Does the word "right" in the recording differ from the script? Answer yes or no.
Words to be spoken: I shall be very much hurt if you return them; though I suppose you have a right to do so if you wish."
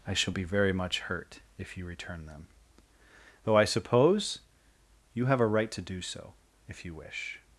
no